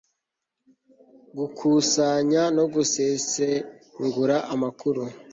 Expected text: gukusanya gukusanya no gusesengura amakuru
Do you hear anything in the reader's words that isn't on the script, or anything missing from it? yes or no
yes